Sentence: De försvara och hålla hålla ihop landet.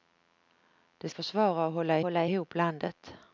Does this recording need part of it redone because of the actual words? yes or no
no